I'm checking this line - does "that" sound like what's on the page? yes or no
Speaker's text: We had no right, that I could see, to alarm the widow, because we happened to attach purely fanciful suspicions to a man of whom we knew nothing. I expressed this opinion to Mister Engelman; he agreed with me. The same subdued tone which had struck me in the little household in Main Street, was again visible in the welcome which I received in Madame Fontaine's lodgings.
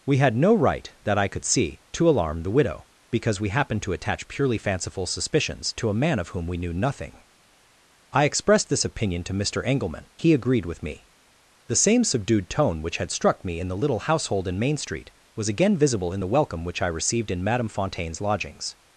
yes